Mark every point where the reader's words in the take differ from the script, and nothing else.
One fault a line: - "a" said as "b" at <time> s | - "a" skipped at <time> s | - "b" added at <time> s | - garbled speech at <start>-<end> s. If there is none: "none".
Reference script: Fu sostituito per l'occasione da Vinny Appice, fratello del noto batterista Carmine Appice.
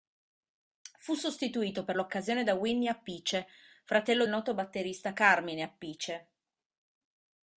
- "del" skipped at 4.3 s